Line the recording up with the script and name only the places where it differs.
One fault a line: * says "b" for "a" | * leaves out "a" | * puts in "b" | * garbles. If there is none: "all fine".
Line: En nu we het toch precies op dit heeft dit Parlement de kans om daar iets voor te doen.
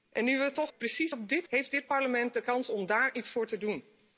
all fine